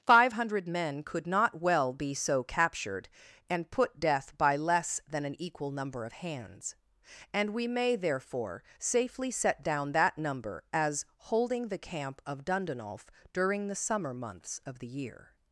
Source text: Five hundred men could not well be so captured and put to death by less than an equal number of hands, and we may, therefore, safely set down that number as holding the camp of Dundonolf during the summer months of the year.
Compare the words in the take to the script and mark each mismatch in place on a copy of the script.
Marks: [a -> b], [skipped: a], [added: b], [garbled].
Five hundred men could not well be so captured and put [skipped: to] death by less than an equal number of hands, and we may, therefore, safely set down that number as holding the camp of Dundonolf during the summer months of the year.